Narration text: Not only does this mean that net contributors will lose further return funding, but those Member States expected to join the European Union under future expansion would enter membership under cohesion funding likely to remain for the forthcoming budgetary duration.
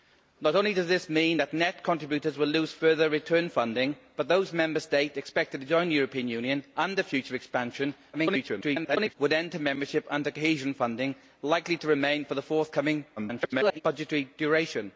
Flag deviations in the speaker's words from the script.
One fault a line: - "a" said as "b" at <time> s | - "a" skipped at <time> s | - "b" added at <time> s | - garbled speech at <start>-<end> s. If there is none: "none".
- garbled speech at 8.1-9.1 s
- garbled speech at 13.2-13.8 s